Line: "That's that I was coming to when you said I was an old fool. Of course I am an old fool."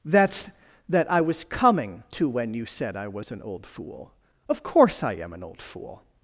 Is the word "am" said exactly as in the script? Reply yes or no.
yes